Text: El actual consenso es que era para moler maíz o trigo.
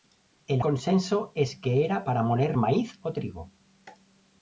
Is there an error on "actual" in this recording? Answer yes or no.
yes